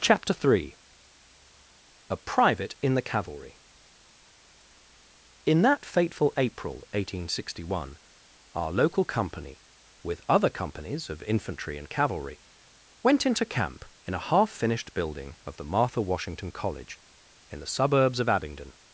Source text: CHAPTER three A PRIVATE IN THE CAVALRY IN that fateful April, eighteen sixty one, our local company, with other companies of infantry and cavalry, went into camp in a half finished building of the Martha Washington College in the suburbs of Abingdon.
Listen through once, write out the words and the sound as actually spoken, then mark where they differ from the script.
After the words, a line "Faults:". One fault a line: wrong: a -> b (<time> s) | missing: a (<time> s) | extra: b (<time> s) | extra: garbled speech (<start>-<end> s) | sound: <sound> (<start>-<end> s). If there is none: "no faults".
CHAPTER three A PRIVATE IN THE CAVALRY IN that fateful April, eighteen sixty one, our local company, with other companies of infantry and cavalry, went into camp in a half finished building of the Martha Washington College in the suburbs of Abingdon.
Faults:
no faults